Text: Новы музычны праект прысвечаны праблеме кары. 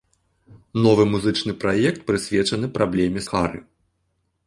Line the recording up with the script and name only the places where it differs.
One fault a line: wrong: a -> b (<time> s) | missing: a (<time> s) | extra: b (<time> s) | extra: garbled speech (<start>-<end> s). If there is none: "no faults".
no faults